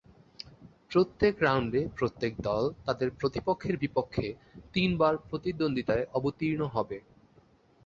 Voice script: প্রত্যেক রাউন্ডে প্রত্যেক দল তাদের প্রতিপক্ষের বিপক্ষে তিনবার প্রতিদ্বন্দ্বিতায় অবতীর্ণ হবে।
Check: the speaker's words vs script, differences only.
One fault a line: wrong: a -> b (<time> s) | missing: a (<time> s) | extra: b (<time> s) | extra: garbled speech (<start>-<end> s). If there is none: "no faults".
no faults